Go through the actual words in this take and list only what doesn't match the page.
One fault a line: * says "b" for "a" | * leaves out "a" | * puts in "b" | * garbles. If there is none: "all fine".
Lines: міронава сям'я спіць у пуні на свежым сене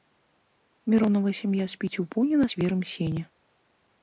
all fine